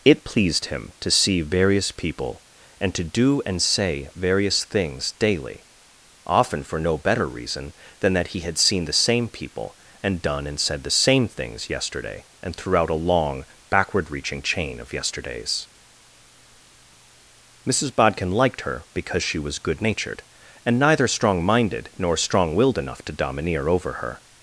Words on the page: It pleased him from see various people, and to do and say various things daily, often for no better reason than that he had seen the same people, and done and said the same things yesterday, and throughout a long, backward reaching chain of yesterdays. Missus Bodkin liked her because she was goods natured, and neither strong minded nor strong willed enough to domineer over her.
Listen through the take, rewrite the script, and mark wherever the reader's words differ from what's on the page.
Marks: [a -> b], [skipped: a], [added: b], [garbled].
It pleased him [from -> to] see various people, and to do and say various things daily, often for no better reason than that he had seen the same people, and done and said the same things yesterday, and throughout a long, backward reaching chain of yesterdays. Missus Bodkin liked her because she was [goods -> good] natured, and neither strong minded nor strong willed enough to domineer over her.